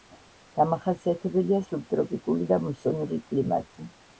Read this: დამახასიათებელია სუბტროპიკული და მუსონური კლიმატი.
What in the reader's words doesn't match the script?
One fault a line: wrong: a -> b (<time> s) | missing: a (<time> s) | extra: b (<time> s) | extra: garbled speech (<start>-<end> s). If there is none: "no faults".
no faults